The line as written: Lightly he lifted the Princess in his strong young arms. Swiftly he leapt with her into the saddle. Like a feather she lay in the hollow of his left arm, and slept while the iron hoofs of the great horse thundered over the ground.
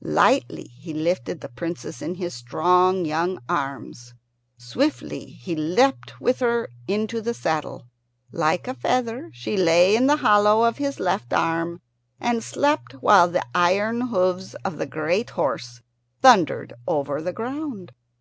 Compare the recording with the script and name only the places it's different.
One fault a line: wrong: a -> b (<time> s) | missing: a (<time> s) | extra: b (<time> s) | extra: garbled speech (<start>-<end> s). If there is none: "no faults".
no faults